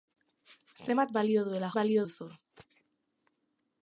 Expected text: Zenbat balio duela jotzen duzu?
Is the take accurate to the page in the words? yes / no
no